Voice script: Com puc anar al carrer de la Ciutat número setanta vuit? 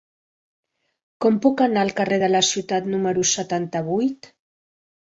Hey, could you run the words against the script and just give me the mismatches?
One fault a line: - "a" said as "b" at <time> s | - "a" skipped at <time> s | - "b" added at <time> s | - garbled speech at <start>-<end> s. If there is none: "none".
none